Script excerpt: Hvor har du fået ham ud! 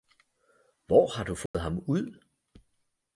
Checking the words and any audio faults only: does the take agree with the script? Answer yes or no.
no